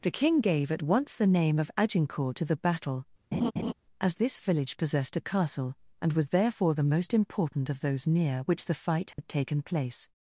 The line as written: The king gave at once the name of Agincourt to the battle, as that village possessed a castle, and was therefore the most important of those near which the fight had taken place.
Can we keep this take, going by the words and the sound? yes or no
no